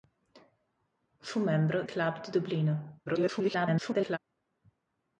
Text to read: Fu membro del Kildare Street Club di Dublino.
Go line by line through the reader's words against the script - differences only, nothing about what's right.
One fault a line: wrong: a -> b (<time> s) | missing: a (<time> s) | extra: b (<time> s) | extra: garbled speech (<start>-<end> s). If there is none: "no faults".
missing: del Kildare Street (1.8 s)
extra: garbled speech (3.1-4.2 s)